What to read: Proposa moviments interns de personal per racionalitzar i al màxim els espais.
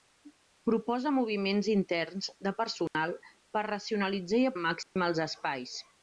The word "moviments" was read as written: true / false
true